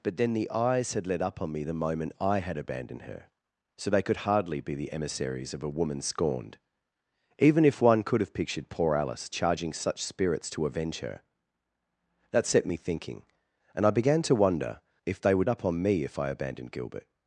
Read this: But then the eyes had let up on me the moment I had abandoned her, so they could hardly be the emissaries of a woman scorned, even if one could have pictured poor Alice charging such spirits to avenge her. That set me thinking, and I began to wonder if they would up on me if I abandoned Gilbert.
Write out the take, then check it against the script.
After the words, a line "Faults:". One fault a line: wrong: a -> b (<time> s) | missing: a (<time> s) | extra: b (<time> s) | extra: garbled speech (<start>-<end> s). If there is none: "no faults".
But then the eyes had let up on me the moment I had abandoned her, so they could hardly be the emissaries of a woman scorned, even if one could have pictured poor Alice charging such spirits to avenge her. That set me thinking, and I began to wonder if they would up on me if I abandoned Gilbert.
Faults:
no faults